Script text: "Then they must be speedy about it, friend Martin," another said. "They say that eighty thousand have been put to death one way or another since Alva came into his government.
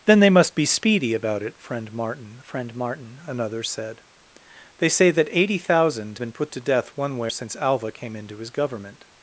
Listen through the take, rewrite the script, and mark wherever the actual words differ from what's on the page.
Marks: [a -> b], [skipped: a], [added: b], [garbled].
"Then they must be speedy about it, friend Martin," [added: friend Martin] another said. "They say that eighty thousand [skipped: have] been put to death one way [skipped: or another] since Alva came into his government.